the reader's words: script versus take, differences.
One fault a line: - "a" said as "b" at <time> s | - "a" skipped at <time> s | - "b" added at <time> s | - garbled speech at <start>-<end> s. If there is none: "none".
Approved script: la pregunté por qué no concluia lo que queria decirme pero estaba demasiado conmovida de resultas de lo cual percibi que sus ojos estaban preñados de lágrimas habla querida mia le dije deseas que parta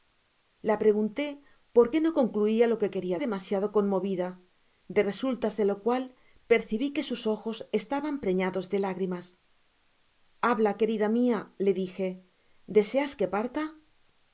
- "decirme pero estaba" skipped at 3.2 s